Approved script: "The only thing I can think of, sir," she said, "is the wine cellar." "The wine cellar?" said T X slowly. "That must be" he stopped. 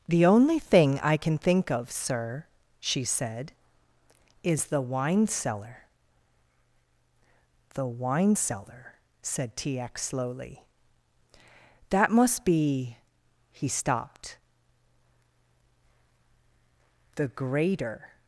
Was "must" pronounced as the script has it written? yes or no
yes